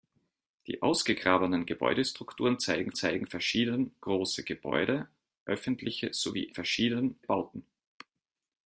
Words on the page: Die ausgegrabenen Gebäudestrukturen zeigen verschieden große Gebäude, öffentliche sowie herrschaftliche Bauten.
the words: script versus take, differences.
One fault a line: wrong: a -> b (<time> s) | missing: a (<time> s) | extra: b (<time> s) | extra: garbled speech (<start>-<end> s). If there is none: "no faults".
extra: zeigen (2.9 s)
wrong: herrschaftliche -> verschieden (6.5 s)